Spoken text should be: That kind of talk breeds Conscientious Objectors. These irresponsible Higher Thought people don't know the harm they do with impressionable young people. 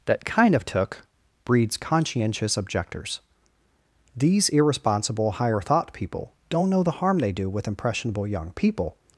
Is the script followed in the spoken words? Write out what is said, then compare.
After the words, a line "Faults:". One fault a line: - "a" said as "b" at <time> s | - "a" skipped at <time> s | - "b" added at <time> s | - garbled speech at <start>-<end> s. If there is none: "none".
That kind of took breeds Conscientious Objectors. These irresponsible Higher Thought people don't know the harm they do with impressionable young people.
Faults:
- "talk" said as "took" at 0.7 s